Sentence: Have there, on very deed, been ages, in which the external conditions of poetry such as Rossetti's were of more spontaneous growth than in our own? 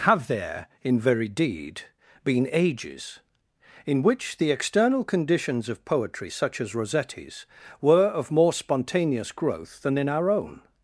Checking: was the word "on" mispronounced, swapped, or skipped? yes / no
yes